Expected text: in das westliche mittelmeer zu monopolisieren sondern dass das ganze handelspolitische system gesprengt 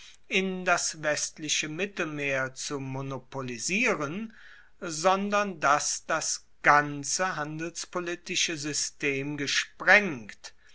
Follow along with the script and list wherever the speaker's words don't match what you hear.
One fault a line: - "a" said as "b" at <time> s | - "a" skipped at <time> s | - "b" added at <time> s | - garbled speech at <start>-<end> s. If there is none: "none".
none